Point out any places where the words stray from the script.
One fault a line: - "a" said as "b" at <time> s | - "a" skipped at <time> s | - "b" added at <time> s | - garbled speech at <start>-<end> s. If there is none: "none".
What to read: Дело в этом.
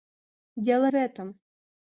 none